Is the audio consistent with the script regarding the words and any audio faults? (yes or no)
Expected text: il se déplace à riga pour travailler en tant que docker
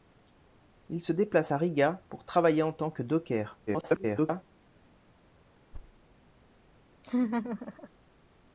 no